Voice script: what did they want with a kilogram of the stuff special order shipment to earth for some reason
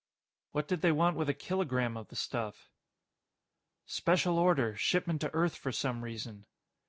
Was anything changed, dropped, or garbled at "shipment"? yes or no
no